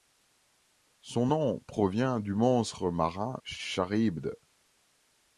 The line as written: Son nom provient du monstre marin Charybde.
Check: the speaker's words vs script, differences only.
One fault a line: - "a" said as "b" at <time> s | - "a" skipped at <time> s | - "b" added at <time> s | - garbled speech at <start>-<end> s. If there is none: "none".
none